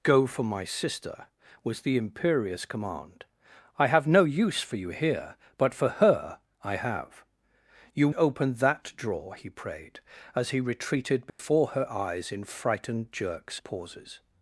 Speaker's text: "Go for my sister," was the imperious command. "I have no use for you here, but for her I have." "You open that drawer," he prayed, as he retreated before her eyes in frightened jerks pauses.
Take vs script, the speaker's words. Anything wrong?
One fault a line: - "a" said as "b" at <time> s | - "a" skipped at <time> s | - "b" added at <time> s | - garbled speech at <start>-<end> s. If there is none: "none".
none